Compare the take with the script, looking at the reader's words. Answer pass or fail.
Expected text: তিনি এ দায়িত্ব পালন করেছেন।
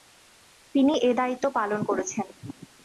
pass